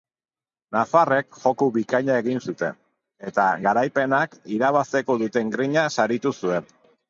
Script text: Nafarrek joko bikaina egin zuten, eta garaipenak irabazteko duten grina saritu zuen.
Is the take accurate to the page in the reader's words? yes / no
yes